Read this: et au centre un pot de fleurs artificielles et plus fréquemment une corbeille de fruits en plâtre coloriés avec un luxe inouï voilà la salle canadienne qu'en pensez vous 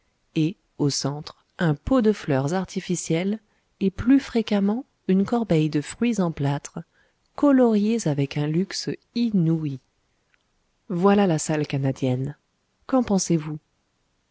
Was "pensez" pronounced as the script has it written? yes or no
yes